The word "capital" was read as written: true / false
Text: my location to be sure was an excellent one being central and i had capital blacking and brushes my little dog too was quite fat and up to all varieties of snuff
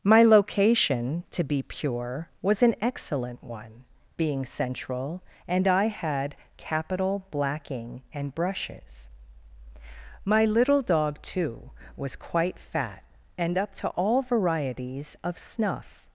true